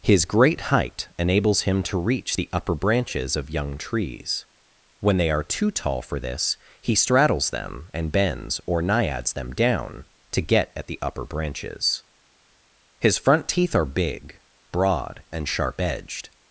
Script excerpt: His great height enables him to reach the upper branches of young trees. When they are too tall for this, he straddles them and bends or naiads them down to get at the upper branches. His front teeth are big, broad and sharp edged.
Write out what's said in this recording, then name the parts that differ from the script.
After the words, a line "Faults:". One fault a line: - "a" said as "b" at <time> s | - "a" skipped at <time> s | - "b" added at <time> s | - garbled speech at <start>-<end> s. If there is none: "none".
His great height enables him to reach the upper branches of young trees. When they are too tall for this, he straddles them and bends or naiads them down to get at the upper branches. His front teeth are big, broad and sharp edged.
Faults:
none